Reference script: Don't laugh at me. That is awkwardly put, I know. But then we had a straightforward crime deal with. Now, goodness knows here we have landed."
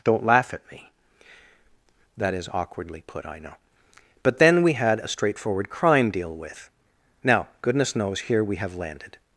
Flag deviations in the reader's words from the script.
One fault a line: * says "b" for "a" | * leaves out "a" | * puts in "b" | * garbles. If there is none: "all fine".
all fine